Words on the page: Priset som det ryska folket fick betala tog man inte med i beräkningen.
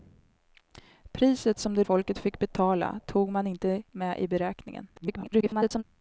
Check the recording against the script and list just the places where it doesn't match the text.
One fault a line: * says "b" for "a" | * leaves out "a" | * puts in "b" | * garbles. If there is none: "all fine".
* leaves out "ryska"
* garbles